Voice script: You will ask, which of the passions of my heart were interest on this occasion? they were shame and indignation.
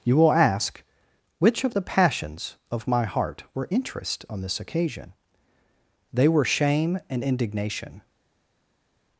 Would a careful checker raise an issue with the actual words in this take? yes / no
no